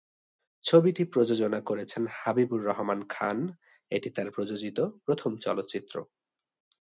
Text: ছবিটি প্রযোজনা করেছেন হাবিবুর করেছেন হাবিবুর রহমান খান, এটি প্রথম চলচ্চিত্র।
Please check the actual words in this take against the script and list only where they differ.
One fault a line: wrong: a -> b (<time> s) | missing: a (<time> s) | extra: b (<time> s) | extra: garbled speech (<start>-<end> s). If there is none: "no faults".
missing: করেছেন হাবিবুর (2.6 s)
extra: তার প্রযোজিত (4.1 s)